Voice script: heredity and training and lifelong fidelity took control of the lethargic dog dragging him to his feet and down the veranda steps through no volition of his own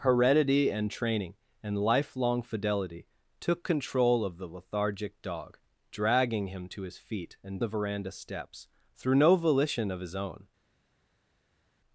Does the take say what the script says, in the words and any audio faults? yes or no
no